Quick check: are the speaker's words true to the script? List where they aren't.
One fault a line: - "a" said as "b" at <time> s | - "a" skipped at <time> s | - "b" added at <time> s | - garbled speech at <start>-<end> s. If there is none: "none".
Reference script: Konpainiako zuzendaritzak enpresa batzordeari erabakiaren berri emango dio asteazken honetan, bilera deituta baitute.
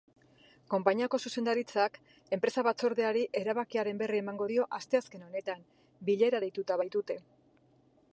none